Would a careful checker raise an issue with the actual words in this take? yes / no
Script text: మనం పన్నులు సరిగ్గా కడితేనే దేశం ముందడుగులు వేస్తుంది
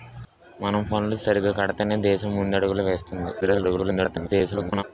yes